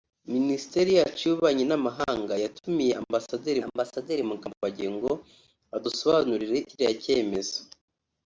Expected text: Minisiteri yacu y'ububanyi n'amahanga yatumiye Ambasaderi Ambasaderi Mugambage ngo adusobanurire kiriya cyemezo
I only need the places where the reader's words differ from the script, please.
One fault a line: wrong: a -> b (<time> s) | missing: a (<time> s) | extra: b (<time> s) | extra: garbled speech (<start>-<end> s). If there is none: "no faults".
no faults